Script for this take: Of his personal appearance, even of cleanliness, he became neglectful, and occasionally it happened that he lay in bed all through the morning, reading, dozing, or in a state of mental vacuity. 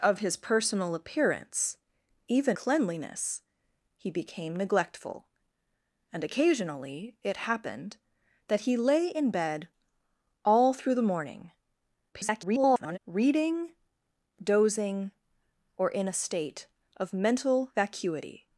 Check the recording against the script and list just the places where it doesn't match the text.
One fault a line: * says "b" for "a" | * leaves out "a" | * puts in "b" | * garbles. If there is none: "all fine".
* leaves out "of"
* garbles